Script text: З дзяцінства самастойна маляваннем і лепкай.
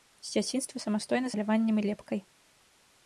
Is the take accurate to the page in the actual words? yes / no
yes